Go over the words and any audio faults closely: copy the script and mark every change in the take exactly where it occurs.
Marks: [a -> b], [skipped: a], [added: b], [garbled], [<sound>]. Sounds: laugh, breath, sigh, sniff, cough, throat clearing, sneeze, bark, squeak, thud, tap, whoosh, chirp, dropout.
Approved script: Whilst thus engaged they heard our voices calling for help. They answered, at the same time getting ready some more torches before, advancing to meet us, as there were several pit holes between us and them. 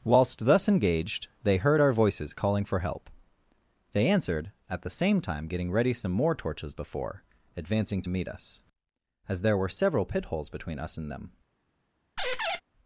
Whilst thus engaged they heard our voices calling for help. They answered, at the same time getting ready some more torches before, advancing to meet us, as there were several pit holes between us and them. [squeak]